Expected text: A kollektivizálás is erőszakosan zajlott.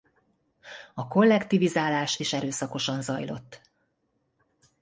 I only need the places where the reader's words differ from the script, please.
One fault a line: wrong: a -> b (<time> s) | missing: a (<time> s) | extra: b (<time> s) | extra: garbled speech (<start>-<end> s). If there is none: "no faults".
no faults